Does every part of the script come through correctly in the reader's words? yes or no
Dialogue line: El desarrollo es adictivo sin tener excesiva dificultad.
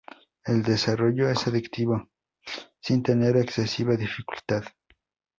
yes